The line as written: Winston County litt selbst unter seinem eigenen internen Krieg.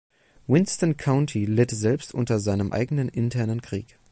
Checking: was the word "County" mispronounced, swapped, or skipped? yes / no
no